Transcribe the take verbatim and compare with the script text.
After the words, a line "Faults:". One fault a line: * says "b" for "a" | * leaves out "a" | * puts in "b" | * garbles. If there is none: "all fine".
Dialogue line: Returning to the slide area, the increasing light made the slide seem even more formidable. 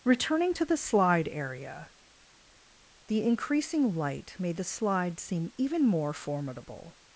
Returning to the slide area, the increasing light made the slide seem even more formidable.
Faults:
all fine